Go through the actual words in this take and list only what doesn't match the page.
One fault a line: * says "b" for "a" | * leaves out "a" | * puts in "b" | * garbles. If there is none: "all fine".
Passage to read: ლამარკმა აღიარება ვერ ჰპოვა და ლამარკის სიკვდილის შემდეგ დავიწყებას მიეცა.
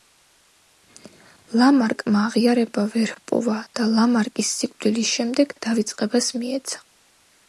all fine